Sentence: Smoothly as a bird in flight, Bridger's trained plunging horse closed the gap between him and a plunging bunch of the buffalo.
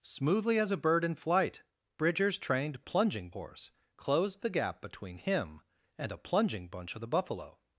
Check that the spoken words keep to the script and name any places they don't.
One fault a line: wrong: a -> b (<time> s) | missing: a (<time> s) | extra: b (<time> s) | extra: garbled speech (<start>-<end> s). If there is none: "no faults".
no faults